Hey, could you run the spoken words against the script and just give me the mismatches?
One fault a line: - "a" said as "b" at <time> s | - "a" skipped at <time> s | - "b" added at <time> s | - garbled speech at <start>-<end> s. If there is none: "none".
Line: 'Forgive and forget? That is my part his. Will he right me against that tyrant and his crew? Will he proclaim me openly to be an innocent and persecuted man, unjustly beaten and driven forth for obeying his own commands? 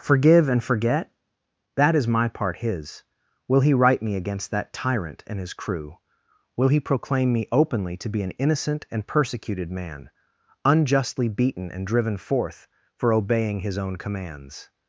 none